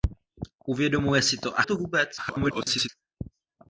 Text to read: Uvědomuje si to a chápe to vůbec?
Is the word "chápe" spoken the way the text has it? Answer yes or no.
no